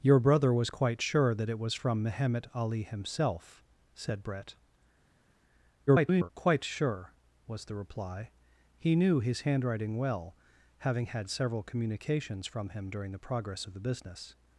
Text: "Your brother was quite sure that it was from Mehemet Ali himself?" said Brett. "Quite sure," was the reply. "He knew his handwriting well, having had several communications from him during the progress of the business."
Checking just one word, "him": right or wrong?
right